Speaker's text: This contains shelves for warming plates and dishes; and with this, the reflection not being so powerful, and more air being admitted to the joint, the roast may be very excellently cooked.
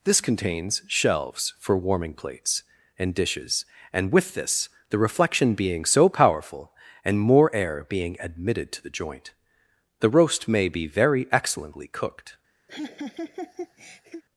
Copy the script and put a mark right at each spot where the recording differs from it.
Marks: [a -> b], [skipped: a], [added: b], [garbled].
This contains shelves for warming plates and dishes; and with this, the reflection [skipped: not] being so powerful, and more air being admitted to the joint, the roast may be very excellently cooked.